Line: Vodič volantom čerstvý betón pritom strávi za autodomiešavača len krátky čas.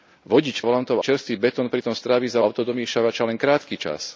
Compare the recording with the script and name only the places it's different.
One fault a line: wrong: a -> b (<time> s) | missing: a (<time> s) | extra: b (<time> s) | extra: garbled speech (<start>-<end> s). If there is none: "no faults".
no faults